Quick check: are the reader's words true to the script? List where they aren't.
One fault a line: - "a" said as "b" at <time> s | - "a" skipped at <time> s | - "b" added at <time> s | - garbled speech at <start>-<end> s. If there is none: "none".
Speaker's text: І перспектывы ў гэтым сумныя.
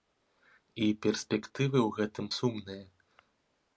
none